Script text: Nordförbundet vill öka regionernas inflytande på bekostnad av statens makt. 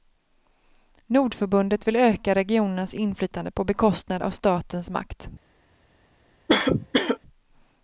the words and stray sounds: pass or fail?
fail